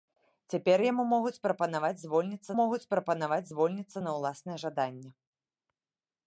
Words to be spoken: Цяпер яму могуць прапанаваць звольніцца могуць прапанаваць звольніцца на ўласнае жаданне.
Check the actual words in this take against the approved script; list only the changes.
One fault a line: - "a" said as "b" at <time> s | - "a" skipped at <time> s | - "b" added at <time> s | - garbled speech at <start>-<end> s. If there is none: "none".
none